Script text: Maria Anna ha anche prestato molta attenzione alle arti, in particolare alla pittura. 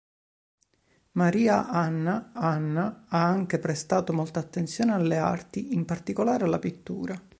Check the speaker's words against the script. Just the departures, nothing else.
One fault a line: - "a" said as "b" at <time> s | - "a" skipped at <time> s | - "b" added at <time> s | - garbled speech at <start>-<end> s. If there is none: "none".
- "Anna" added at 2.4 s